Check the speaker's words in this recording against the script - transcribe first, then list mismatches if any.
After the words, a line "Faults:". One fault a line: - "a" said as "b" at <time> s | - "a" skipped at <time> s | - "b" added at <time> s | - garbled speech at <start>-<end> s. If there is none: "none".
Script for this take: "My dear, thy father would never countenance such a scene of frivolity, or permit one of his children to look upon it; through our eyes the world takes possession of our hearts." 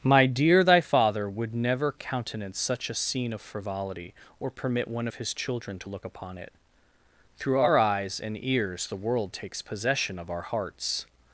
"My dear, thy father would never countenance such a scene of frivolity, or permit one of his children to look upon it; through our eyes and ears the world takes possession of our hearts."
Faults:
- "and ears" added at 8.2 s